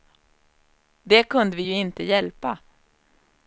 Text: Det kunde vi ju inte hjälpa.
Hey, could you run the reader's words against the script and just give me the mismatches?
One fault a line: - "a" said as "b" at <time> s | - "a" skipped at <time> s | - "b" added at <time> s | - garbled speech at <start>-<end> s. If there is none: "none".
none